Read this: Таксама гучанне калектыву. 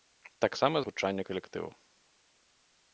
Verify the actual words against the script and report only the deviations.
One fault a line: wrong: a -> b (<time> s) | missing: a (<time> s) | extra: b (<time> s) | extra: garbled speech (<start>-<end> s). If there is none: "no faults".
no faults